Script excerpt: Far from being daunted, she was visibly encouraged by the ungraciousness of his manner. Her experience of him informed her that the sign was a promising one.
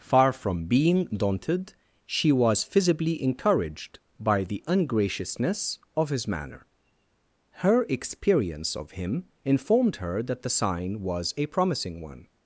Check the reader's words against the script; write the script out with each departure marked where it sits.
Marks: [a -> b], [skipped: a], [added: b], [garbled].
Far from being daunted, she was visibly encouraged by the ungraciousness of his manner. Her experience of him informed her that the sign was a promising one.